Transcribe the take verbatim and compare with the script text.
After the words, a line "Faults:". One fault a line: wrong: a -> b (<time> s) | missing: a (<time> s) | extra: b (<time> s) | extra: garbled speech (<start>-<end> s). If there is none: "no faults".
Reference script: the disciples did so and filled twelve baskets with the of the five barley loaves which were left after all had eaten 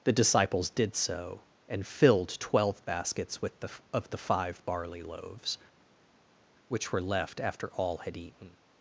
the disciples did so and filled twelve baskets with the of the five barley loaves which were left after all had eaten
Faults:
no faults